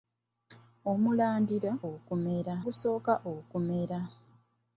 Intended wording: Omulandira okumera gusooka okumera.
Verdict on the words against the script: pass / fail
pass